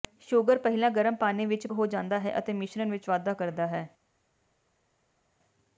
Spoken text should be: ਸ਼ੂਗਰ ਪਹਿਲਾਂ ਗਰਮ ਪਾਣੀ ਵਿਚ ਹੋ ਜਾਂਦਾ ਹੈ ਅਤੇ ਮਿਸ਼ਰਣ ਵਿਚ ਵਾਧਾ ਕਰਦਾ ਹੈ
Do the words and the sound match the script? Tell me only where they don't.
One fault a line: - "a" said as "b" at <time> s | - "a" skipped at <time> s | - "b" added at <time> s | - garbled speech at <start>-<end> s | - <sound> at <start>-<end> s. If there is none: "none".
none